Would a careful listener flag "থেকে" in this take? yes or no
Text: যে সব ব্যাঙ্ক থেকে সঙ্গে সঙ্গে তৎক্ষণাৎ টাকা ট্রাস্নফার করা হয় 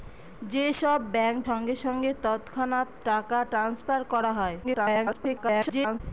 yes